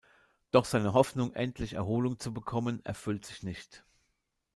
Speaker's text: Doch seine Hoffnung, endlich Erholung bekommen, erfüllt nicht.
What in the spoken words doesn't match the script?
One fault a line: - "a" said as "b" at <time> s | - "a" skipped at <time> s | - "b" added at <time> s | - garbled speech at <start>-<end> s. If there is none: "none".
- "zu" added at 2.2 s
- "sich" added at 3.2 s